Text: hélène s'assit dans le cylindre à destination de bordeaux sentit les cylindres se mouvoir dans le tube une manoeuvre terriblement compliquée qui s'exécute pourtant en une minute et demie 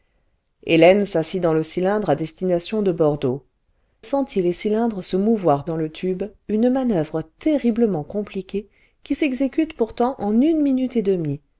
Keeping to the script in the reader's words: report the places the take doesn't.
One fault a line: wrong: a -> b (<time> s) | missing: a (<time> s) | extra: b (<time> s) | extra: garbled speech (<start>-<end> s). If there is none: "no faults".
no faults